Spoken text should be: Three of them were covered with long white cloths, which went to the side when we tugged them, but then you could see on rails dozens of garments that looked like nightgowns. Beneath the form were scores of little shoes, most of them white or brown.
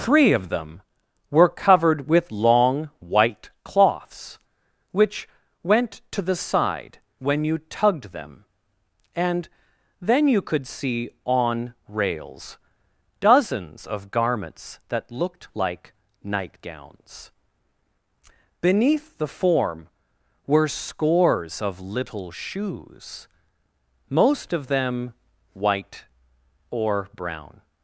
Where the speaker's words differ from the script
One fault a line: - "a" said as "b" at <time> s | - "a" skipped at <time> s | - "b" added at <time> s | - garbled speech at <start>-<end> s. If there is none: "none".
- "we" said as "you" at 7.4 s
- "but" said as "and" at 9.1 s